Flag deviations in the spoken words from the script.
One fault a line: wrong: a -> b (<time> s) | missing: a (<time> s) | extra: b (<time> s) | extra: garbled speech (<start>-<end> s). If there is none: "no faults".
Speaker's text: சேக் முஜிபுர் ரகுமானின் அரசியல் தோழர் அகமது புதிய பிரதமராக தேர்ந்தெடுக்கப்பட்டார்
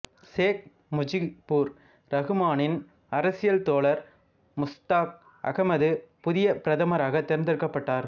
extra: முஸ்தாக் (4.6 s)